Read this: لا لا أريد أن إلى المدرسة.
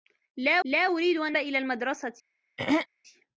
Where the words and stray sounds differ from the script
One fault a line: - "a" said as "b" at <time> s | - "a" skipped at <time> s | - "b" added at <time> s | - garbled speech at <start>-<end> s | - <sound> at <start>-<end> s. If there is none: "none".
- throat clearing at 2.6-2.9 s